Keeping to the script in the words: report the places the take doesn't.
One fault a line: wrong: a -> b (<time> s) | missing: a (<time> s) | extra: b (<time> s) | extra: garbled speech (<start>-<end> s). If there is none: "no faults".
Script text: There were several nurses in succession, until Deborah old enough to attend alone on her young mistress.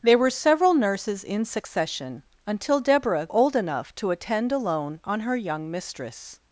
no faults